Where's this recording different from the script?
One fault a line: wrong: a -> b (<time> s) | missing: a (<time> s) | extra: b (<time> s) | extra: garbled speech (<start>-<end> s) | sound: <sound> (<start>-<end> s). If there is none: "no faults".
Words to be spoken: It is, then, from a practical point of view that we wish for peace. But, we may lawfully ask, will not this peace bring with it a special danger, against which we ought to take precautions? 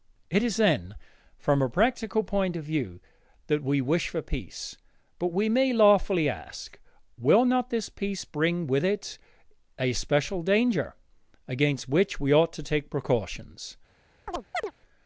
sound: chirp (14.3-14.7 s)